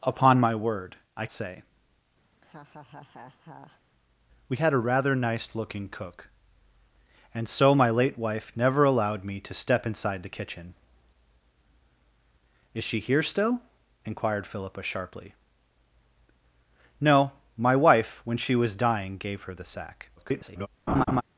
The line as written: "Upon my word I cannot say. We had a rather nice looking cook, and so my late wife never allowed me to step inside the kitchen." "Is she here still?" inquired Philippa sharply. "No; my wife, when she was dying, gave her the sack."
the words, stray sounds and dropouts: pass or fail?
fail